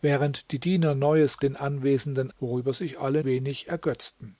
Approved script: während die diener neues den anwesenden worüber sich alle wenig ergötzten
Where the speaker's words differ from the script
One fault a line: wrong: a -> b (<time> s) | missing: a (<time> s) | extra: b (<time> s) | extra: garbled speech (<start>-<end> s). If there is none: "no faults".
no faults